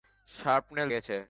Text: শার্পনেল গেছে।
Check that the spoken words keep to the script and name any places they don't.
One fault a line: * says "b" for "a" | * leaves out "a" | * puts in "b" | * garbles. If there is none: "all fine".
all fine